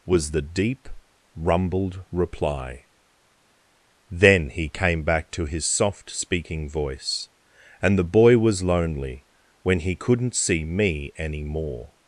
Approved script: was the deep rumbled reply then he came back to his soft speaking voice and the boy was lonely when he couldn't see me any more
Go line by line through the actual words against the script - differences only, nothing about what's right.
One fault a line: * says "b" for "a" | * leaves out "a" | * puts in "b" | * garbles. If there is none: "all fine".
all fine